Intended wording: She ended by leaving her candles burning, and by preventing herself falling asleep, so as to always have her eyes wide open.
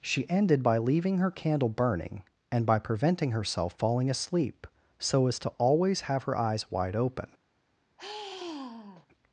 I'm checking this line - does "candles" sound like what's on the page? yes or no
no